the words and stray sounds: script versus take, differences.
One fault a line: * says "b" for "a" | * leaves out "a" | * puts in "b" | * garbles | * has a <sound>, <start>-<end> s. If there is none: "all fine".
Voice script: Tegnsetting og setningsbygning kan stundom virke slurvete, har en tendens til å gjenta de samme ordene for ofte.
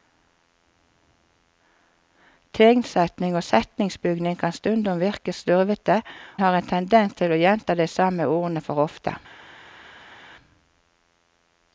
all fine